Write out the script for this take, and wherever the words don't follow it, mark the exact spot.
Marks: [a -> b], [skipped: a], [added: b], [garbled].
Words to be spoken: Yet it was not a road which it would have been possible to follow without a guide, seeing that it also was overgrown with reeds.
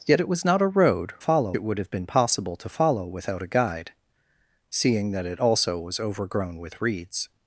Yet it was not a road [which -> follow] it would have been possible to follow without a guide, seeing that it also was overgrown with reeds.